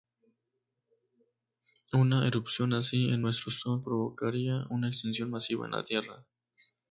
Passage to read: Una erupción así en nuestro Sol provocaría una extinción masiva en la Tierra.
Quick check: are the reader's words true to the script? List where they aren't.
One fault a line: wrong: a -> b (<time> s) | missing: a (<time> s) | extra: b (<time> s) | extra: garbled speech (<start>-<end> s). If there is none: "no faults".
no faults